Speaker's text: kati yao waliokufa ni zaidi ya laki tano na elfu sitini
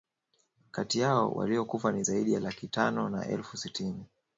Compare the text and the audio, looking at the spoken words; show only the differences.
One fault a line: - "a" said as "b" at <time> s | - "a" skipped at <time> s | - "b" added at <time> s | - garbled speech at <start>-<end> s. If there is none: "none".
none